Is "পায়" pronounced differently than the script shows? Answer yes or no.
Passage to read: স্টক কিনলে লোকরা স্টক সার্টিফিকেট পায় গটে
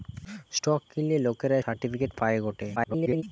no